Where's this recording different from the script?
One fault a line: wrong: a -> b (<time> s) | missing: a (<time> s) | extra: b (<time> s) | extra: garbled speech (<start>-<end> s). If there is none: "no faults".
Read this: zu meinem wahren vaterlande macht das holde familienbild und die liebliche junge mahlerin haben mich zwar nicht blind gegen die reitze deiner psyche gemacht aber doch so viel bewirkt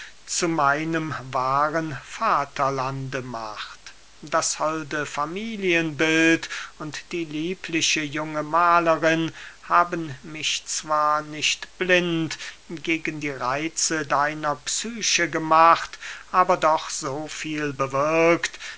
no faults